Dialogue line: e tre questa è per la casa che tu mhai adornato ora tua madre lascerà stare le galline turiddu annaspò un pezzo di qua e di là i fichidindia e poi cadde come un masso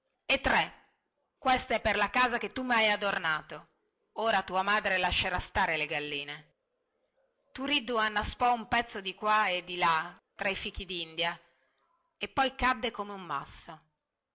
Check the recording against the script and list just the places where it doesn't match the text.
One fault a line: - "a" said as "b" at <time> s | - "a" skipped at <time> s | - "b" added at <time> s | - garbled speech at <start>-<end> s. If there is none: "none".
- "tra" added at 10.3 s